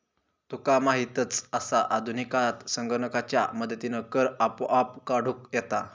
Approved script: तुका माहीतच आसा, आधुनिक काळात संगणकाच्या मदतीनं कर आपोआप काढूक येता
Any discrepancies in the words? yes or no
no